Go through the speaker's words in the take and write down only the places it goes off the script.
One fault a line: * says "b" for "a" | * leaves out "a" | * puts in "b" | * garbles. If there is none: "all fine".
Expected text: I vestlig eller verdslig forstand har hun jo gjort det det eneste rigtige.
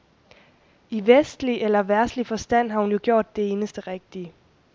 * leaves out "det"